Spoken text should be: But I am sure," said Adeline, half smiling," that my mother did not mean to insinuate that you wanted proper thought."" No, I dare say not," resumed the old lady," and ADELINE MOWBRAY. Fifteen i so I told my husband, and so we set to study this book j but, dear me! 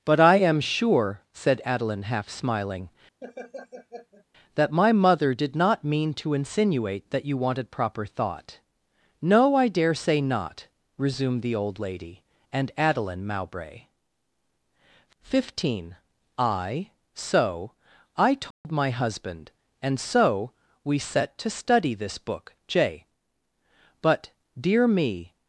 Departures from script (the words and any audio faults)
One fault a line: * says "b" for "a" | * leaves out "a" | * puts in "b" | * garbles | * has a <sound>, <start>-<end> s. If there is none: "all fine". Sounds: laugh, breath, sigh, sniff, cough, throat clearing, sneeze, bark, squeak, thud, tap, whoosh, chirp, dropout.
* has a laugh, 3.2-4.3 s
* has a dropout, 18.5-18.6 s